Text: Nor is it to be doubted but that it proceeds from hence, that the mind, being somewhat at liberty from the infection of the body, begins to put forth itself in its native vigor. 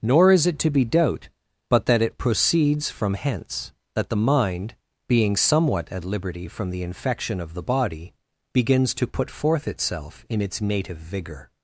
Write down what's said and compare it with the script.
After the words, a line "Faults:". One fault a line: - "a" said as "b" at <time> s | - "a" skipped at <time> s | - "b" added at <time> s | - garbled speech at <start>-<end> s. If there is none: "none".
Nor is it to be doubt but that it proceeds from hence, that the mind, being somewhat at liberty from the infection of the body, begins to put forth itself in its native vigor.
Faults:
- "doubted" said as "doubt" at 0.8 s